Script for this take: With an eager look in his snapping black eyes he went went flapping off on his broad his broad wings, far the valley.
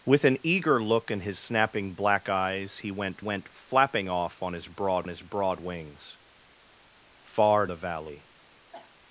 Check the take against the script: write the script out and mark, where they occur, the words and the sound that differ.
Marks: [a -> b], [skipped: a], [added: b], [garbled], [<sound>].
With an eager look in his snapping black eyes he went went flapping off on his broad his broad wings, far the valley. [cough]